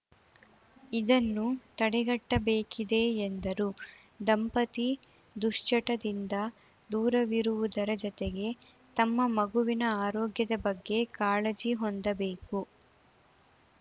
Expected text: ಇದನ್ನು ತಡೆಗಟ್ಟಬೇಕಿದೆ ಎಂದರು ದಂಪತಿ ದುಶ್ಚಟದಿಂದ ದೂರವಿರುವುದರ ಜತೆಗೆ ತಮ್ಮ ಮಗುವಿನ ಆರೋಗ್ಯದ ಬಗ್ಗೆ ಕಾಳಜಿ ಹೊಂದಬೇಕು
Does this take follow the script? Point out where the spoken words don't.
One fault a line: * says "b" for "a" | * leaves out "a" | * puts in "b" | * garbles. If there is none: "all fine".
all fine